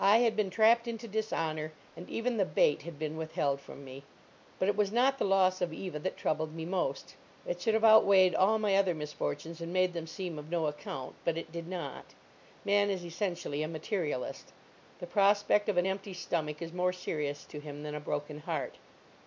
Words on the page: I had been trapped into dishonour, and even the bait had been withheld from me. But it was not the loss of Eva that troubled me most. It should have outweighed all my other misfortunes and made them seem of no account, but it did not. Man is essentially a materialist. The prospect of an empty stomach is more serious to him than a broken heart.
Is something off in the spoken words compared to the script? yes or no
no